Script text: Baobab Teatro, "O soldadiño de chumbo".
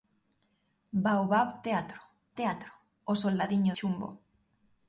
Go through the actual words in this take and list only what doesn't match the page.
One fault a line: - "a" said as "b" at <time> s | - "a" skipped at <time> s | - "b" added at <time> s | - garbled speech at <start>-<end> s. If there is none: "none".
- "Teatro" added at 2.4 s
- "de" skipped at 3.7 s